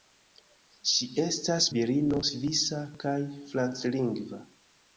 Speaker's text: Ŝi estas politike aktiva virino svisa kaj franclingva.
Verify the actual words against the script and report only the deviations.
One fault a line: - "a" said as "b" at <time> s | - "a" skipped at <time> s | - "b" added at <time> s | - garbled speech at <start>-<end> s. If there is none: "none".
- "politike aktiva" skipped at 1.7 s